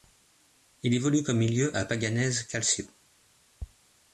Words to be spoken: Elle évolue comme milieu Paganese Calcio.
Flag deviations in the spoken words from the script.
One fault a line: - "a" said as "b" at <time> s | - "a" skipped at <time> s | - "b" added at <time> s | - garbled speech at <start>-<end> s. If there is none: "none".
- "Elle" said as "Il" at 0.8 s
- "à" added at 1.7 s